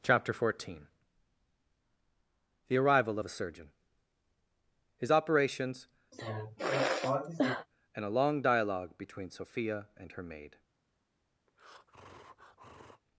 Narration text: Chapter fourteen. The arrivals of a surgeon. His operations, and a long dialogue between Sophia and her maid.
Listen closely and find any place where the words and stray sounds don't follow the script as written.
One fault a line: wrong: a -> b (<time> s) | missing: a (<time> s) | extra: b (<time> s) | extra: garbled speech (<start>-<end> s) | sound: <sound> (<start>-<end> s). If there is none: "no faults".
wrong: arrivals -> arrival (2.8 s)
sound: sigh (6.1-7.7 s)
sound: breath (11.5-13.0 s)